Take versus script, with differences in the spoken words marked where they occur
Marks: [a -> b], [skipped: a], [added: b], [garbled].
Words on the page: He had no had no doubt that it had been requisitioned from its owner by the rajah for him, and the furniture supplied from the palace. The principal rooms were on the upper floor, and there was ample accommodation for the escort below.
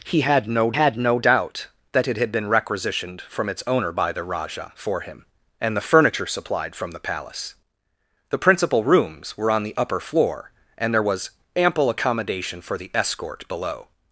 He had no had no doubt that it had been requisitioned from its owner by the rajah for him, and the furniture supplied from the palace. The principal rooms were on the upper floor, and there was ample accommodation for the escort below.